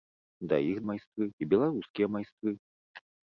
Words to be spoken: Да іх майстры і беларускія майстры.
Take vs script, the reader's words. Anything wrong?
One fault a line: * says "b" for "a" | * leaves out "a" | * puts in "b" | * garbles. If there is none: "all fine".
all fine